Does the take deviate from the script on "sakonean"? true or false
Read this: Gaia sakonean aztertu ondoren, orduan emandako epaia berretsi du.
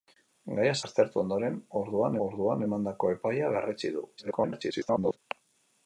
true